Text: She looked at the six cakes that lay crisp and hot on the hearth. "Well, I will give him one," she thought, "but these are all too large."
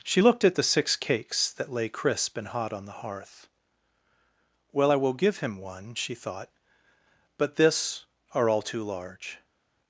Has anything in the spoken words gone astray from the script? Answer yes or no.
yes